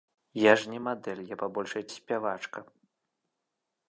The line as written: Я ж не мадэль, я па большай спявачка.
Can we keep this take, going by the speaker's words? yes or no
yes